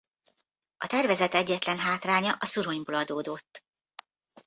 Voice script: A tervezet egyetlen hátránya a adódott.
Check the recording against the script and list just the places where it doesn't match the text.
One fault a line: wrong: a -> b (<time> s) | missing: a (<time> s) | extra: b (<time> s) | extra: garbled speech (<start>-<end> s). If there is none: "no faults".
extra: szuronyból (2.4 s)